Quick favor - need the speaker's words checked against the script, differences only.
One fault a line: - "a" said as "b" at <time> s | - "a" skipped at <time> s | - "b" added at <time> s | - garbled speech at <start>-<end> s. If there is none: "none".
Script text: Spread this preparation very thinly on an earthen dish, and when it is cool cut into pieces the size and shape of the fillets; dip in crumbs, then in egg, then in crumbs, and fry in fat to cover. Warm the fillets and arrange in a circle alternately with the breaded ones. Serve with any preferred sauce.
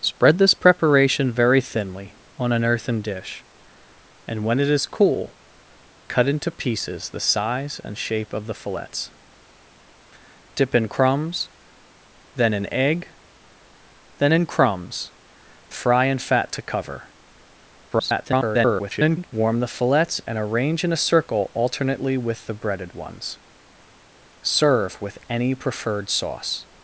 - "and" skipped at 15.1 s
- garbled speech at 17.9-19.3 s